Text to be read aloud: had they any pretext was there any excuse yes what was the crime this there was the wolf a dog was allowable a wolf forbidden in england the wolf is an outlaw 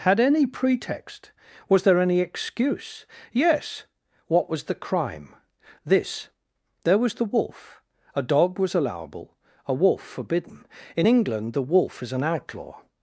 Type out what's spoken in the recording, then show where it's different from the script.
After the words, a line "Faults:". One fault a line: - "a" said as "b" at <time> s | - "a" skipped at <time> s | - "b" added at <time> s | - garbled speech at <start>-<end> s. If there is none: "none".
had any pretext was there any excuse yes what was the crime this there was the wolf a dog was allowable a wolf forbidden in england the wolf is an outlaw
Faults:
- "they" skipped at 0.2 s